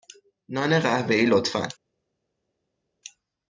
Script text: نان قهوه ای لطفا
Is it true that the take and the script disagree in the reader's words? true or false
false